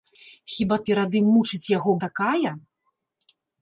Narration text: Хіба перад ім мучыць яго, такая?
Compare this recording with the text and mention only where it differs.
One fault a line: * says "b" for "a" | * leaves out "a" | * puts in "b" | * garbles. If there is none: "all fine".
all fine